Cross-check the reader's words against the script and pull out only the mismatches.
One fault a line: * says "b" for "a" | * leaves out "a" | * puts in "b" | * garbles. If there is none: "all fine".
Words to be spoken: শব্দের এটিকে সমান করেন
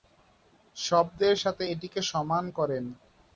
* puts in "সাথে"